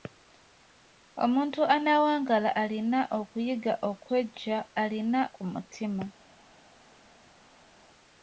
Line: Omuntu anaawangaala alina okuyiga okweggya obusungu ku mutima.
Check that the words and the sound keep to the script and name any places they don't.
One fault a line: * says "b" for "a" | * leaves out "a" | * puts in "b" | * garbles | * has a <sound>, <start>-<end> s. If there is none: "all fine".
* says "alina" for "obusungu"